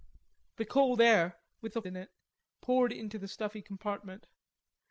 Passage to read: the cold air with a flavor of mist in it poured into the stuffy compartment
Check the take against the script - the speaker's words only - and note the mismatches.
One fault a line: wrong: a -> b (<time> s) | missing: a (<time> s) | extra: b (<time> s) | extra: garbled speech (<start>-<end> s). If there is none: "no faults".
missing: flavor of mist (1.8 s)